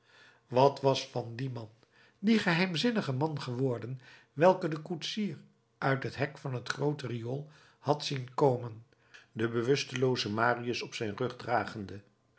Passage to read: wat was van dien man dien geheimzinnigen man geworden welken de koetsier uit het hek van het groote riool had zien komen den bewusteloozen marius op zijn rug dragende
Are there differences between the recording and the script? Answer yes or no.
no